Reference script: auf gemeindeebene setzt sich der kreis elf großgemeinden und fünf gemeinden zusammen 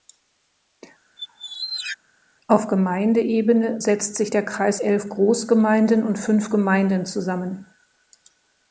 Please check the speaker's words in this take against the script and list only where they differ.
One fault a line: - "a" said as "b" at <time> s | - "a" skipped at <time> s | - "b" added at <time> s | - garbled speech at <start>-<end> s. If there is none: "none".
none